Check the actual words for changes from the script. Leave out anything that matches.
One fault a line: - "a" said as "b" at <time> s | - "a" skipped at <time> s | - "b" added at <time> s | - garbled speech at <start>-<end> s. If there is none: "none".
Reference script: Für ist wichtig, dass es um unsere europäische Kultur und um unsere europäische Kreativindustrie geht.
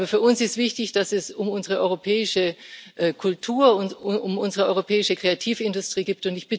- "uns" added at 0.2 s